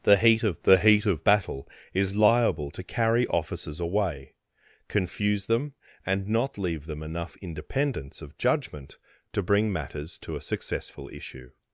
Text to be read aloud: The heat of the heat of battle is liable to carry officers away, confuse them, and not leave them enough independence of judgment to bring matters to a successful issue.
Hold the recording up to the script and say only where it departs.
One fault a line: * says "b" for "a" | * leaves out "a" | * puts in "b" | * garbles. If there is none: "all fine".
all fine